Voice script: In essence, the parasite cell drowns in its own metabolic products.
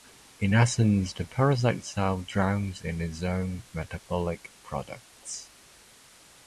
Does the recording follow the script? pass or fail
pass